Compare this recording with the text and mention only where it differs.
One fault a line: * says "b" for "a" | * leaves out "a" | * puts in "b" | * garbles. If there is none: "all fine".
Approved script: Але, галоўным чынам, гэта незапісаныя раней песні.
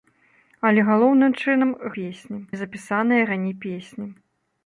* says "песні" for "гэта"